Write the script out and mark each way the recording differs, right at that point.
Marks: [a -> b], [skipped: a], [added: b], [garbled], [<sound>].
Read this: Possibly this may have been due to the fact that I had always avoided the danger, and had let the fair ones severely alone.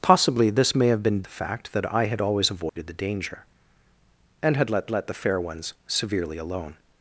Possibly this may have been [skipped: due to] the fact that I had always avoided [dropout] the danger, and had let [added: let] the fair ones severely alone.